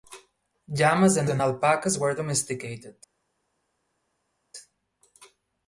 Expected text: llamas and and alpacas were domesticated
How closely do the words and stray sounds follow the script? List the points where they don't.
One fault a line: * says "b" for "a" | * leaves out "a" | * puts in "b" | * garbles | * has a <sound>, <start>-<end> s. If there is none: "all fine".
all fine